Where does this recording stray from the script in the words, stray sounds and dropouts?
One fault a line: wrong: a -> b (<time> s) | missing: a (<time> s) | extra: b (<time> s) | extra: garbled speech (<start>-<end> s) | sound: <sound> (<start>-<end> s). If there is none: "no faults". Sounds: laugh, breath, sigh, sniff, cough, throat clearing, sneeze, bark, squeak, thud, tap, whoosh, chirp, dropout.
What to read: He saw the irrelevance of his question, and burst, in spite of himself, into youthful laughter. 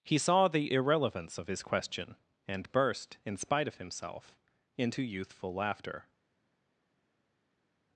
no faults